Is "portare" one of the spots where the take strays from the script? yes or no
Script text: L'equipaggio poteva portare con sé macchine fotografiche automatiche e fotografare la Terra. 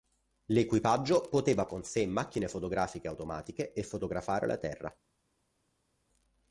yes